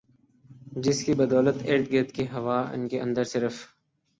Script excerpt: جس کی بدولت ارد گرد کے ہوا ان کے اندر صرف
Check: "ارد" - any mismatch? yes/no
no